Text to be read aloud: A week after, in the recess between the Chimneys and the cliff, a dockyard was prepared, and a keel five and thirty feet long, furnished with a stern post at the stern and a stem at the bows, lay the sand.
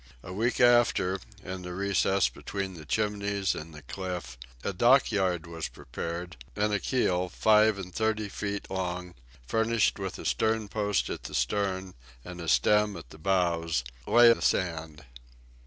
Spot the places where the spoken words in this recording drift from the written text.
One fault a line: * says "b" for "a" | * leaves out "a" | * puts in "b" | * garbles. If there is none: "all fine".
all fine